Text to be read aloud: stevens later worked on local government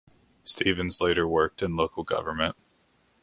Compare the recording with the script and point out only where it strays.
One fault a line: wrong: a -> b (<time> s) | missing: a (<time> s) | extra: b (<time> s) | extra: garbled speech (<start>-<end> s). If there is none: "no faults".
wrong: on -> in (1.6 s)